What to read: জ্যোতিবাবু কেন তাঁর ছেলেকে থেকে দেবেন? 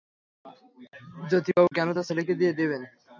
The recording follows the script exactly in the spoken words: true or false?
false